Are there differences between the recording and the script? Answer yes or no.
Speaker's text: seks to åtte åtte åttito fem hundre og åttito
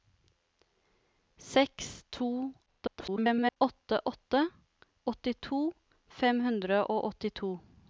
yes